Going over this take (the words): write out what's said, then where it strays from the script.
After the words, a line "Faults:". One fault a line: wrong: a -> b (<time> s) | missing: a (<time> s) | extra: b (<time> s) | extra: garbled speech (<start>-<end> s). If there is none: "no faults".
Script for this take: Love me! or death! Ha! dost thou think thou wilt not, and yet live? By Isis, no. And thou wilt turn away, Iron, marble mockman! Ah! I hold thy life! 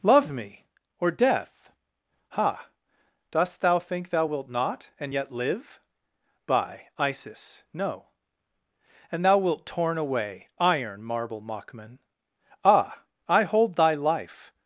Love me! or death! Ha! dost thou think thou wilt not, and yet live? By Isis, no. And thou wilt torn away, Iron, marble mockman! Ah! I hold thy life!
Faults:
wrong: turn -> torn (9.6 s)